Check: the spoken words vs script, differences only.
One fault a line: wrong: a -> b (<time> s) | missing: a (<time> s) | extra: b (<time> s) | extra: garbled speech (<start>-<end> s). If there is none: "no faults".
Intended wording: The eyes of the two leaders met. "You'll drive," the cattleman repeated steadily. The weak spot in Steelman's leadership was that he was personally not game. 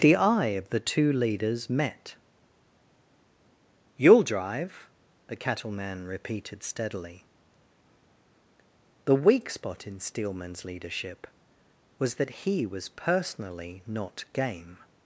wrong: eyes -> eye (0.1 s)